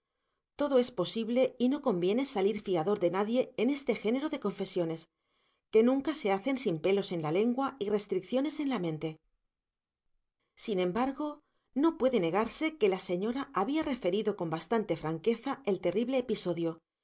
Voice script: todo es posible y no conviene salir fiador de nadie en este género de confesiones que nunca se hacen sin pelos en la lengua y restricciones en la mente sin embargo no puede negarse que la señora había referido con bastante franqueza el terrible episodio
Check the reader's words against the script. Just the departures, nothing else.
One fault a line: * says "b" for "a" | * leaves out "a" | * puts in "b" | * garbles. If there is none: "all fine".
all fine